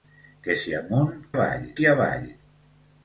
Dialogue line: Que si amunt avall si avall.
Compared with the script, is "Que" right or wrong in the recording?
right